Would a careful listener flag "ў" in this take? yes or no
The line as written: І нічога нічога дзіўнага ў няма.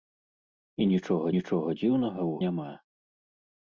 no